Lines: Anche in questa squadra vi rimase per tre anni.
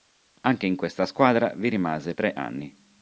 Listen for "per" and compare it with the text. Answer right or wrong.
wrong